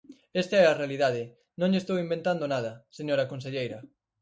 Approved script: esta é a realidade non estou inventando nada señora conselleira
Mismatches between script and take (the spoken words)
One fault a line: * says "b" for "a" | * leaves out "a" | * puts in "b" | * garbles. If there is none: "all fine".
* puts in "lle"